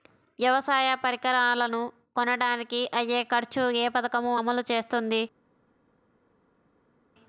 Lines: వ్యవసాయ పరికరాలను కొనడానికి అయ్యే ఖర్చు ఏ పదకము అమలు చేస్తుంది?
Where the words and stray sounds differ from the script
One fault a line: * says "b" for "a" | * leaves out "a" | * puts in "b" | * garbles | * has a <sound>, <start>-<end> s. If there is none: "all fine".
all fine